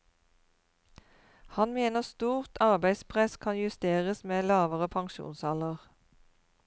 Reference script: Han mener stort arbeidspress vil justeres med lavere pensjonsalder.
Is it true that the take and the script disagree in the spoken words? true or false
true